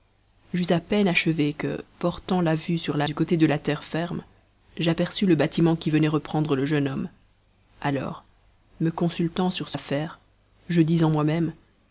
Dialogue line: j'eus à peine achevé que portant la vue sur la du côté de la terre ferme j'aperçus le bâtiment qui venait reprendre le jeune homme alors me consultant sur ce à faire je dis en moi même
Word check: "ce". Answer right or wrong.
right